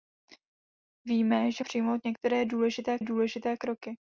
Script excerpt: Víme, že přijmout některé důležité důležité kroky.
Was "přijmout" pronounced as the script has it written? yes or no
yes